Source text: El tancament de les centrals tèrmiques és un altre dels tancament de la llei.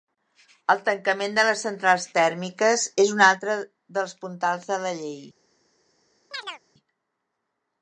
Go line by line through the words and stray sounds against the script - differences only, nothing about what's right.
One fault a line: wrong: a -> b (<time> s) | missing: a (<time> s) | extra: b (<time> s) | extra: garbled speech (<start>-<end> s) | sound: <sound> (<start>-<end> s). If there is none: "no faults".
wrong: tancament -> puntals (4.2 s)
sound: chirp (6.3-6.6 s)